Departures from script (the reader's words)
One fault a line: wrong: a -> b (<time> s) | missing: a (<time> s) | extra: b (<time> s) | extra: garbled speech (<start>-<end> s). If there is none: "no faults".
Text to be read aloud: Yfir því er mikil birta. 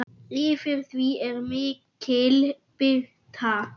no faults